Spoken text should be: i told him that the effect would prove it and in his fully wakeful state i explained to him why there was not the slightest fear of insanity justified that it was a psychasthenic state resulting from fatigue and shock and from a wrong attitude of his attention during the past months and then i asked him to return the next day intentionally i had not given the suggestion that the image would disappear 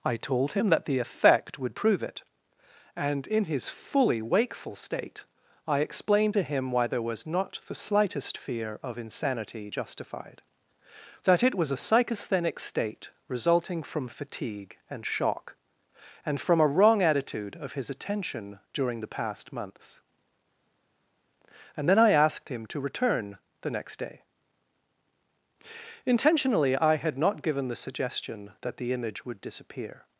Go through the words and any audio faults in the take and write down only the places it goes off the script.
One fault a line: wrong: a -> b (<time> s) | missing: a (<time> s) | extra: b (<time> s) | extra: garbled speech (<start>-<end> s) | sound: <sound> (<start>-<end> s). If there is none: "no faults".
no faults